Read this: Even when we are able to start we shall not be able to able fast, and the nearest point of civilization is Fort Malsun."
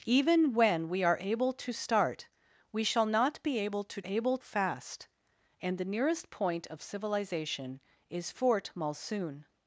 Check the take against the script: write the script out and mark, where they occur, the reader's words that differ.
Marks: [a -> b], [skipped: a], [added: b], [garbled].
Even when we are able to start we shall not be able to able fast, and the nearest point of civilization is Fort Malsun."